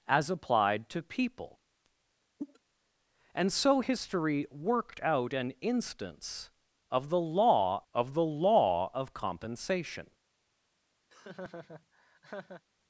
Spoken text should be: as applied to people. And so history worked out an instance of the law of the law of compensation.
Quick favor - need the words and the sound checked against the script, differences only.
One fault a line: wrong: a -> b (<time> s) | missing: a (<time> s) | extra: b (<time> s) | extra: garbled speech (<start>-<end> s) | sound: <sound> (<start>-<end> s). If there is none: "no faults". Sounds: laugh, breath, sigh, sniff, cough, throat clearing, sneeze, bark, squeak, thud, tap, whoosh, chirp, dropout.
sound: cough (2.4-2.6 s)
sound: laugh (11.1-12.6 s)